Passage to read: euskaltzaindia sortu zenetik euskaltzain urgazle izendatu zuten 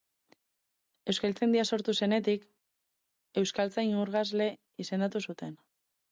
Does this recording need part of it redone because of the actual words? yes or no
no